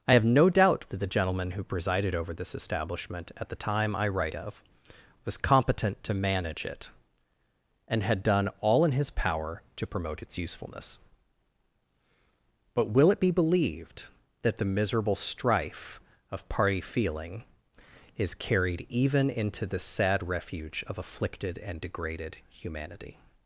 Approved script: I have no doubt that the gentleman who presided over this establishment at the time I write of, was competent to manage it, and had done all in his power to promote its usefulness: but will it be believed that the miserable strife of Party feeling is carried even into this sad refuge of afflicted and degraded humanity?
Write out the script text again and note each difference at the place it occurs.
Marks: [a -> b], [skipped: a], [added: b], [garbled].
I have no doubt that the gentleman who presided over this establishment at the time I write of, was competent to manage it, and had done all in his power to promote its usefulness: but will it be believed that the miserable strife of Party feeling is carried even into [this -> the] sad refuge of afflicted and degraded humanity?